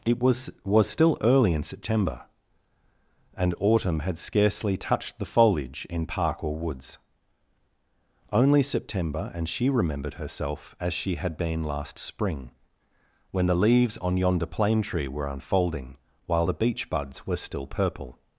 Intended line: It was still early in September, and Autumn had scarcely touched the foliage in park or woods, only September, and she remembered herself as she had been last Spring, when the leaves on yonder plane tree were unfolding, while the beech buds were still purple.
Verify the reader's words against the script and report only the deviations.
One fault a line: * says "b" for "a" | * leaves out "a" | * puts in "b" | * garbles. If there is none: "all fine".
* puts in "was"